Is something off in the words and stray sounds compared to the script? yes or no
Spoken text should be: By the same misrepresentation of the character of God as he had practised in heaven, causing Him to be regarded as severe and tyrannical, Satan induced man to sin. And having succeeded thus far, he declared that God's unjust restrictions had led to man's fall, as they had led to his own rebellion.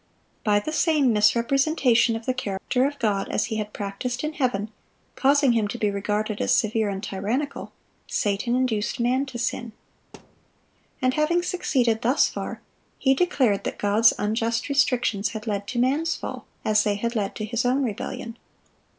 yes